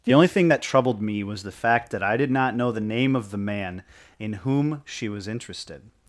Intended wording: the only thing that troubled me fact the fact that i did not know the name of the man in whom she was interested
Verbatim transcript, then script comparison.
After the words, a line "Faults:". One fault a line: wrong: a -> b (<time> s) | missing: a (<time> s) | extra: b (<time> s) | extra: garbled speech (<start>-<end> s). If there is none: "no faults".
the only thing that troubled me was the fact that i did not know the name of the man in whom she was interested
Faults:
wrong: fact -> was (1.2 s)